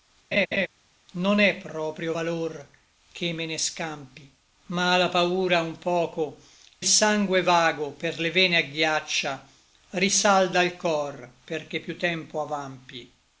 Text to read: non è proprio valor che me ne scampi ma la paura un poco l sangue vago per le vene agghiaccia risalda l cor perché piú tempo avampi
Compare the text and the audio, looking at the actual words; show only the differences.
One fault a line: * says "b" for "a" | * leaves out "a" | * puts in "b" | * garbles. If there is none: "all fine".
all fine